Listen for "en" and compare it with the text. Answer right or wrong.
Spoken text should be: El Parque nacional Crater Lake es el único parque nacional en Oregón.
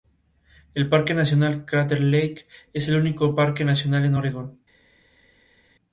right